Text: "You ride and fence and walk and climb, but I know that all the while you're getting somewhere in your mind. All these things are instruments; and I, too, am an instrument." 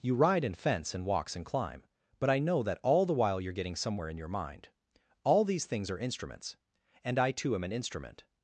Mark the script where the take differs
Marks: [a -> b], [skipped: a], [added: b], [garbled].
"You ride and fence and [walk -> walks] and climb, but I know that all the while you're getting somewhere in your mind. All these things are instruments; and I, too, am an instrument."